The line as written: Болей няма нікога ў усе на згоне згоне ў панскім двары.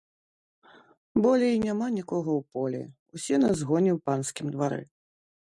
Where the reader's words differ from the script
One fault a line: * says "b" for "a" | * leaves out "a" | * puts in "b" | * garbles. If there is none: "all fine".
* puts in "полі"
* leaves out "згоне"